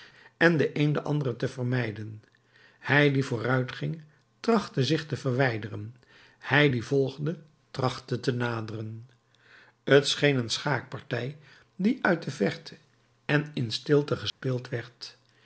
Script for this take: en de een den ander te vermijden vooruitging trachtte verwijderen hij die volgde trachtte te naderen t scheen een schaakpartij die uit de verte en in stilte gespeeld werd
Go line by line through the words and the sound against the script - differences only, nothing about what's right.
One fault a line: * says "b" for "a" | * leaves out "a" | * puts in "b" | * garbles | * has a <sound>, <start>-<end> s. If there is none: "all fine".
* puts in "hij die"
* puts in "zich te"
* has a dropout, 14.3-14.4 s